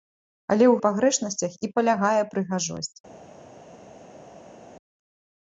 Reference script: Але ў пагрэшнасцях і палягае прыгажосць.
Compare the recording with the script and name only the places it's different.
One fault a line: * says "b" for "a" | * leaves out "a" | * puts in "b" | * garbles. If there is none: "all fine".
all fine